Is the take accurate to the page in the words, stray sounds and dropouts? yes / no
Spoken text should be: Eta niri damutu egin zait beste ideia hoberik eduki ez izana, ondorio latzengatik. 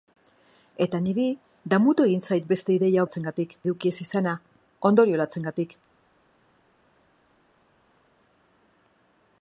no